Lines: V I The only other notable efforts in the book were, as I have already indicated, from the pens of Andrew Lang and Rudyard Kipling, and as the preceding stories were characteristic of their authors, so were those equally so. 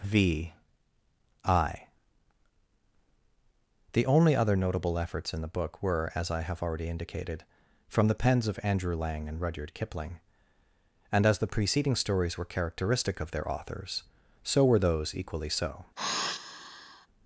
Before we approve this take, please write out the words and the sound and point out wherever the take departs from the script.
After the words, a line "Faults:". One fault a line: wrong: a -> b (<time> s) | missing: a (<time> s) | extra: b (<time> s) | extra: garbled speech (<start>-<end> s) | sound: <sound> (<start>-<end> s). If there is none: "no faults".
V I The only other notable efforts in the book were, as I have already indicated, from the pens of Andrew Lang and Rudyard Kipling, and as the preceding stories were characteristic of their authors, so were those equally so.
Faults:
sound: sigh (16.0-17.1 s)